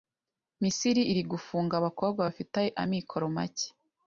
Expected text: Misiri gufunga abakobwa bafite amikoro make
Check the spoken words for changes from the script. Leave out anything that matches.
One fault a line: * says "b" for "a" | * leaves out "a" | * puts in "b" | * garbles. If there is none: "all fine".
* puts in "iri"